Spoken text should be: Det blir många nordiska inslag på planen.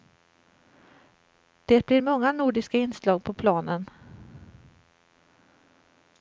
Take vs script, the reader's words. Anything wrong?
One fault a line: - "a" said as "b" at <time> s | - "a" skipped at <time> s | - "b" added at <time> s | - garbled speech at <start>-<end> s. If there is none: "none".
none